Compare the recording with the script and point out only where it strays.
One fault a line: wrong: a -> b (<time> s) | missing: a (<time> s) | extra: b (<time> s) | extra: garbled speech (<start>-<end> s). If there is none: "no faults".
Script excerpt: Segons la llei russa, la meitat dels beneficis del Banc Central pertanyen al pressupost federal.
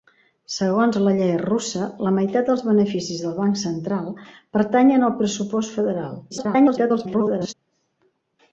extra: garbled speech (6.3-7.5 s)